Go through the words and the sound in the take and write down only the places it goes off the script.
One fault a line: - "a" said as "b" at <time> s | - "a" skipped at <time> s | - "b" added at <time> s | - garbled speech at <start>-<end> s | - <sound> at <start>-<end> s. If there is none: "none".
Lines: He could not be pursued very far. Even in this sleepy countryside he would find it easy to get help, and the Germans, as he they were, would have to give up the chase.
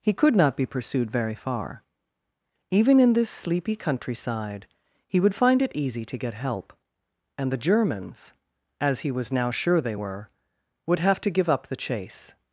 - "was now sure" added at 9.1 s